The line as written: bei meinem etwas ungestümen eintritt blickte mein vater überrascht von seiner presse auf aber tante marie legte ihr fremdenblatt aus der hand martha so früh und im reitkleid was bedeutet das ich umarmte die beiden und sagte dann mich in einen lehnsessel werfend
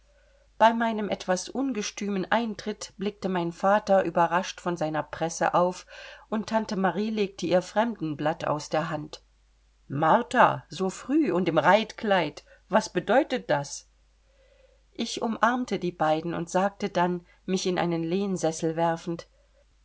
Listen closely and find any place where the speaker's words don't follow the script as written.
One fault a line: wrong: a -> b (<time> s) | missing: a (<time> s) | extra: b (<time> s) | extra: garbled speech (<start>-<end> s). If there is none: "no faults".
wrong: aber -> und (6.3 s)